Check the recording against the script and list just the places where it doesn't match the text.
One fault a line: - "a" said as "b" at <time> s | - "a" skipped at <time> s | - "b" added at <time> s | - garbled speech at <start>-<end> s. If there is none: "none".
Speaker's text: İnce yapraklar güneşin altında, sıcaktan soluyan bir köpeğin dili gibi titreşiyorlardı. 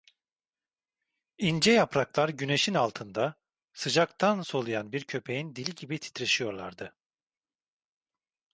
none